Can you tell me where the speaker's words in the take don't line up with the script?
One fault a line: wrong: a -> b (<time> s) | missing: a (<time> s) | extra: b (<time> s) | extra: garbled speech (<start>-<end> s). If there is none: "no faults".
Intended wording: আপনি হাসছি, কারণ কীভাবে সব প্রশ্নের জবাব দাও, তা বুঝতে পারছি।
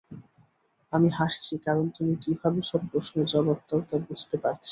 wrong: আপনি -> আমি (0.9 s)
extra: তুমি (2.0 s)